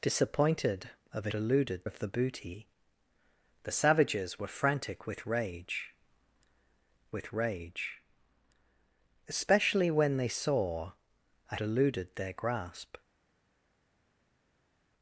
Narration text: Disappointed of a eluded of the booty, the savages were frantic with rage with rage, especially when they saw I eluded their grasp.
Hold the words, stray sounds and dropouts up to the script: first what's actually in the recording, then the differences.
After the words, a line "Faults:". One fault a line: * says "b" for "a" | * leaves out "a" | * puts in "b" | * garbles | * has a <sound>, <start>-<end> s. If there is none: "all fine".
Disappointed of a eluded of the booty, the savages were frantic with rage with rage, especially when they saw I eluded their grasp.
Faults:
all fine